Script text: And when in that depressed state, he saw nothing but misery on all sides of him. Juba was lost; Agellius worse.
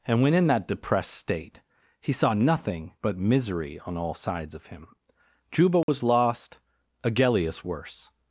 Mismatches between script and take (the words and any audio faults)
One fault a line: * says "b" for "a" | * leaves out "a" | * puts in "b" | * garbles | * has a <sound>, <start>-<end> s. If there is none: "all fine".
* has a dropout, 5.8-5.9 s